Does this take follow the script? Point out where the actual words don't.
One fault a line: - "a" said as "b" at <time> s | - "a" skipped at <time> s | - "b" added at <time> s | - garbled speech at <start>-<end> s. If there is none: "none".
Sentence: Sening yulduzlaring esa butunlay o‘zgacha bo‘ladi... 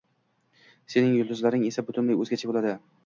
none